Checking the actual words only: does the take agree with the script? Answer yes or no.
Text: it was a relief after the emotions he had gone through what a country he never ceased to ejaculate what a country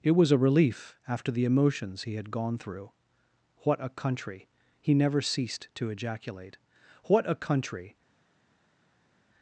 yes